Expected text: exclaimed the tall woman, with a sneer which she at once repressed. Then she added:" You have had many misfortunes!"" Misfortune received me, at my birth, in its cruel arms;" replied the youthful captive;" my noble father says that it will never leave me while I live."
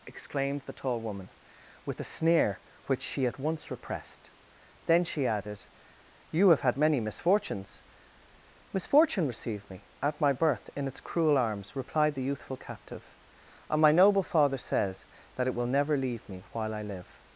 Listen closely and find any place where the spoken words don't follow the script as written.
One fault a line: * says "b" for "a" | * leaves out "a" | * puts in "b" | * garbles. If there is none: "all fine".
* puts in "and"